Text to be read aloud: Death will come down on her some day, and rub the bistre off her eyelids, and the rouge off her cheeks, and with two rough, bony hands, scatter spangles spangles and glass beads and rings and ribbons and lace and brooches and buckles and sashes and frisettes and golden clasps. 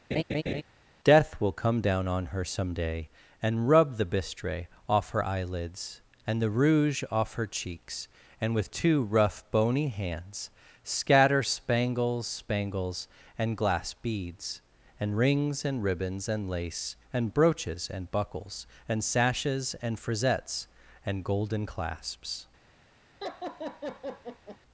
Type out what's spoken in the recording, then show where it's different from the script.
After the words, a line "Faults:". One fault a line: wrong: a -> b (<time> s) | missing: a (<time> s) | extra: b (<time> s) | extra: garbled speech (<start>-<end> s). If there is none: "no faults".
Death will come down on her some day, and rub the bistre off her eyelids, and the rouge off her cheeks, and with two rough, bony hands, scatter spangles spangles and glass beads and rings and ribbons and lace and brooches and buckles and sashes and frisettes and golden clasps.
Faults:
no faults